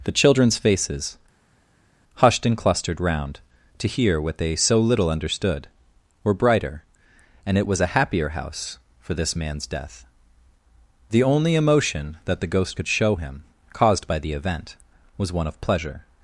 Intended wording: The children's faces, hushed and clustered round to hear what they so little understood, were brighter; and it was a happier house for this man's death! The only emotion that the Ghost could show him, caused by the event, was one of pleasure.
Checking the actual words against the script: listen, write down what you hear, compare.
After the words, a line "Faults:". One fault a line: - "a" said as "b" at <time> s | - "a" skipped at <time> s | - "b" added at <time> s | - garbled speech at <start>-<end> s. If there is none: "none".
The children's faces, hushed and clustered round to hear what they so little understood, were brighter; and it was a happier house for this man's death! The only emotion that the Ghost could show him, caused by the event, was one of pleasure.
Faults:
none